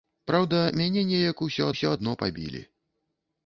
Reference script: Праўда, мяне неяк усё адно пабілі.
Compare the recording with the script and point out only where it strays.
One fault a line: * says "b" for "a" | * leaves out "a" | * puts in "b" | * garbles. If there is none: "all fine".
* puts in "усё"